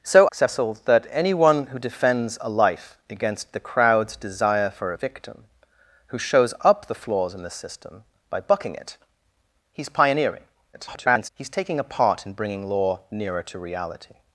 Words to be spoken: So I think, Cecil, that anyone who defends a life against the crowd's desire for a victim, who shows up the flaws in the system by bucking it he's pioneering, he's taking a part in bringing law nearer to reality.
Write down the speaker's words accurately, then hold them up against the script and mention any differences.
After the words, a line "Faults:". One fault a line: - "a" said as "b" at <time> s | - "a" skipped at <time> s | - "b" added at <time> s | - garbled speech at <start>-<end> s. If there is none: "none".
So Cecil, that anyone who defends a life against the crowd's desire for a victim, who shows up the flaws in the system by bucking it he's pioneering, [garbled] he's taking a part in bringing law nearer to reality.
Faults:
- "I think" skipped at 0.3 s
- garbled speech at 10.7-11.3 s